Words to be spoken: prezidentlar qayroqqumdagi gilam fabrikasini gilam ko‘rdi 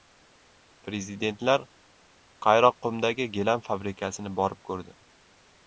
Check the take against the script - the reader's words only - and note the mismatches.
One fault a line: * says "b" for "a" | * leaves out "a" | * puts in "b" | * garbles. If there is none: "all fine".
* says "borib" for "gilam"